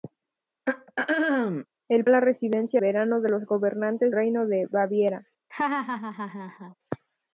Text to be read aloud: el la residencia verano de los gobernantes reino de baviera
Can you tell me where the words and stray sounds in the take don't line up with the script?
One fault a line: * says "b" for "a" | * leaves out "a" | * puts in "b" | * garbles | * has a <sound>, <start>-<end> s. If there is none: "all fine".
* has a throat clearing, 0.7-1.7 s
* has a laugh, 5.5-6.7 s